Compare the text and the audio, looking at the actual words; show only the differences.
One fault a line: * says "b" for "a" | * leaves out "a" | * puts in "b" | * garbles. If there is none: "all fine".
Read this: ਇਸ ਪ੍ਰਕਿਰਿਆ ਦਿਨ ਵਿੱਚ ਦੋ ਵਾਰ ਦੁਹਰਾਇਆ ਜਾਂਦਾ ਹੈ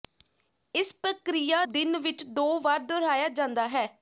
all fine